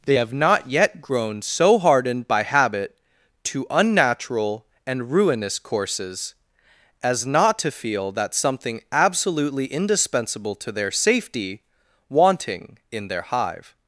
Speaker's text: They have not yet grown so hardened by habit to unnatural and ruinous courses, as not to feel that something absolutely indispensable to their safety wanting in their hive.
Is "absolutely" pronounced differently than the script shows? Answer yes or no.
no